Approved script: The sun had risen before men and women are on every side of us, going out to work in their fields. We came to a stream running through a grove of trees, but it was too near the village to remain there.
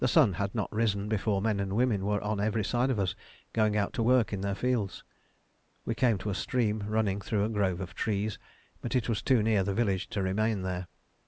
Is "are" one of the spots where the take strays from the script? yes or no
yes